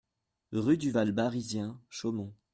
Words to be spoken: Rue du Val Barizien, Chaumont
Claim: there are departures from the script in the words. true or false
false